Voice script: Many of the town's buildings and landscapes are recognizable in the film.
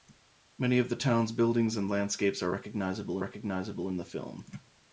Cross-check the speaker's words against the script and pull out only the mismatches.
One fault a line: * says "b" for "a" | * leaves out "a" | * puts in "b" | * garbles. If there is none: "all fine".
* puts in "recognizable"